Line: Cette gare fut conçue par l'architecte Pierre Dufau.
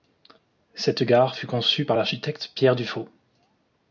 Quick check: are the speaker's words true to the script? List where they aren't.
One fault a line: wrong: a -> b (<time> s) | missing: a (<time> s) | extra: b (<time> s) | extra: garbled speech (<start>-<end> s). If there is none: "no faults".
no faults